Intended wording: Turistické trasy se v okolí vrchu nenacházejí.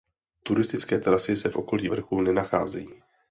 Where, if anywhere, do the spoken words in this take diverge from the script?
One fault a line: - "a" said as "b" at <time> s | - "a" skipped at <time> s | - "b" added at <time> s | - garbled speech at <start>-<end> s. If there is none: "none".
none